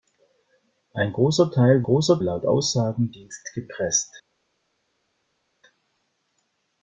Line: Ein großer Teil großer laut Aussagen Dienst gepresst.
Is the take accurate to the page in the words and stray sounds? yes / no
yes